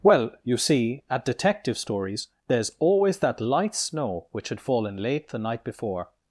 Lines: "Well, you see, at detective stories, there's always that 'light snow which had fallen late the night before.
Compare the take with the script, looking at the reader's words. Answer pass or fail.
pass